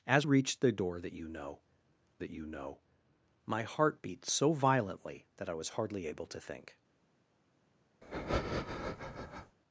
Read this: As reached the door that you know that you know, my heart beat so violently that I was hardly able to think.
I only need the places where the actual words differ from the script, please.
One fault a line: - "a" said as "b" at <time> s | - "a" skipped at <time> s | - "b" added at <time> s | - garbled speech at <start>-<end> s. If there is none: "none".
none